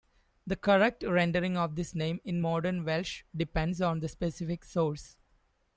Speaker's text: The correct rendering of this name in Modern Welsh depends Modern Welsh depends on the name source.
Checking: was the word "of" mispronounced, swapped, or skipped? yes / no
no